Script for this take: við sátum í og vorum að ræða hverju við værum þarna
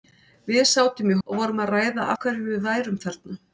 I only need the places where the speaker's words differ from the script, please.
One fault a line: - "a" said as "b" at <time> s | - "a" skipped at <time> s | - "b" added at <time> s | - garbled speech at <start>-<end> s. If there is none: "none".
none